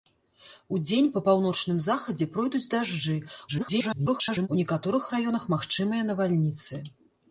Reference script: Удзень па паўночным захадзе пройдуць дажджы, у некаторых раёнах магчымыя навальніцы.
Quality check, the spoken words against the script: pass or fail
fail